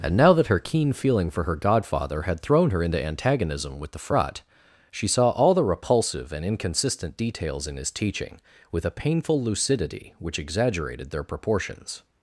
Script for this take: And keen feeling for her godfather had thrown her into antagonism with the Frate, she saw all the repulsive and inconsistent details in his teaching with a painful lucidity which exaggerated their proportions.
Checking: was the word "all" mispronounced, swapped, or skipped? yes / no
no